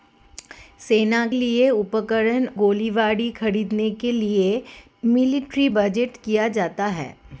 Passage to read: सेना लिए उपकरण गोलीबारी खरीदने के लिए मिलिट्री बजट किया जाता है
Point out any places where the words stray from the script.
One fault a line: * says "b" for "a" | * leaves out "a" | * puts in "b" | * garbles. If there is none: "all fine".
all fine